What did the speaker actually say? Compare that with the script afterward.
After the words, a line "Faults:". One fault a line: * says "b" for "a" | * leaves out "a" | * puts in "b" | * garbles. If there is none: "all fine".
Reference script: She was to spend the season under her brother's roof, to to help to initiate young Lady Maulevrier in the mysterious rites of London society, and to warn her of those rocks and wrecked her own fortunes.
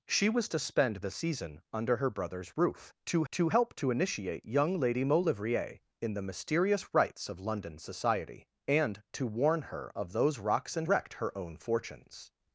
She was to spend the season under her brother's roof, to to help to initiate young Lady Maulevrier in the mysterious rites of London society, and to warn her of those rocks and wrecked her own fortunes.
Faults:
all fine